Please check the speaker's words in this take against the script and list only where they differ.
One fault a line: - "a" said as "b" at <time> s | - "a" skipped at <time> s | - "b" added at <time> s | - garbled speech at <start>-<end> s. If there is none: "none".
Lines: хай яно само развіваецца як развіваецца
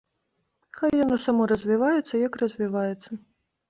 none